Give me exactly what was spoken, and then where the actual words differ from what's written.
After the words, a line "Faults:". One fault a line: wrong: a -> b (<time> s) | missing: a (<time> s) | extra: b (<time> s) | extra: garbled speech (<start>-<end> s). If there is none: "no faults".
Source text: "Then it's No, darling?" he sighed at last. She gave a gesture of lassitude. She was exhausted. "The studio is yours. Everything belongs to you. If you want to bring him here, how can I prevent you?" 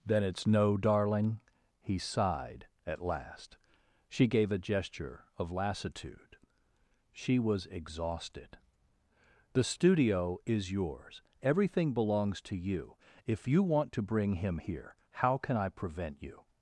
"Then it's No, darling?" he sighed at last. She gave a gesture of lassitude. She was exhausted. "The studio is yours. Everything belongs to you. If you want to bring him here, how can I prevent you?"
Faults:
no faults